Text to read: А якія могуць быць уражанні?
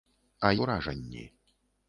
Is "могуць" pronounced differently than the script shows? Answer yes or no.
yes